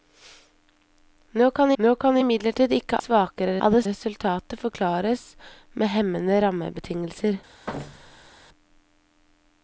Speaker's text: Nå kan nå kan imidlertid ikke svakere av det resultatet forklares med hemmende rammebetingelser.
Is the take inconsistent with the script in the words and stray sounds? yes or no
yes